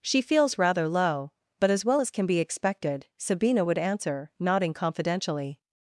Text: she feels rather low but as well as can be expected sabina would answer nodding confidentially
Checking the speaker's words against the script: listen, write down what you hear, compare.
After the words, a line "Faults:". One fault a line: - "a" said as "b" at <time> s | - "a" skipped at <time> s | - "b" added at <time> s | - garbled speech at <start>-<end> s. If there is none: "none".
she feels rather low but as well as can be expected sabina would answer nodding confidentially
Faults:
none